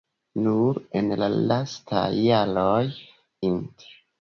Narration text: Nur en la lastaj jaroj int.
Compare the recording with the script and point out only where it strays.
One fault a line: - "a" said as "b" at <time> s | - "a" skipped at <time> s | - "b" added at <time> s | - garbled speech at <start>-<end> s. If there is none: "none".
none